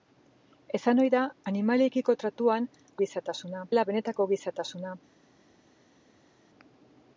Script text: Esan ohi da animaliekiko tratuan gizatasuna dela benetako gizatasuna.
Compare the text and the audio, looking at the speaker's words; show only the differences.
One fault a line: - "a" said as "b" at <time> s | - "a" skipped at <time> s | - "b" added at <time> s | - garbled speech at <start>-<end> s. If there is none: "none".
none